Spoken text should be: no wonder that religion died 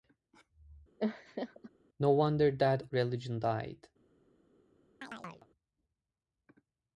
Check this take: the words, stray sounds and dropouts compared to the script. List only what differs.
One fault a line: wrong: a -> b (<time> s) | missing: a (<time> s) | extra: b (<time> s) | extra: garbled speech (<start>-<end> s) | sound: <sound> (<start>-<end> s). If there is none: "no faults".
sound: laugh (1.0-1.7 s)
sound: chirp (5.0-5.5 s)